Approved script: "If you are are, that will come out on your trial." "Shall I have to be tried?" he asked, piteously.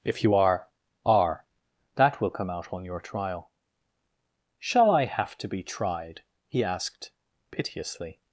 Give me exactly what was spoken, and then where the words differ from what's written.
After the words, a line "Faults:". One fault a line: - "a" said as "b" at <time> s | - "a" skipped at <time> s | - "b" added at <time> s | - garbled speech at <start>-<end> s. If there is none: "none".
"If you are are, that will come out on your trial." "Shall I have to be tried?" he asked, piteously.
Faults:
none